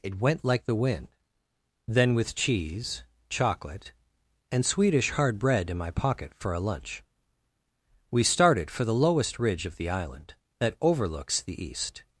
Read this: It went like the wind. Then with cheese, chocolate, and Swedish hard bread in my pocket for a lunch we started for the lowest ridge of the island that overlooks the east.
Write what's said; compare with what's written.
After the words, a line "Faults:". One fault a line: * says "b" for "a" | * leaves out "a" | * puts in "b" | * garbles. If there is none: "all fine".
It went like the wind. Then with cheese, chocolate, and Swedish hard bread in my pocket for a lunch we started for the lowest ridge of the island that overlooks the east.
Faults:
all fine